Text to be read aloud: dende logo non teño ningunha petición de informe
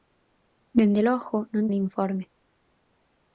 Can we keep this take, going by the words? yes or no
no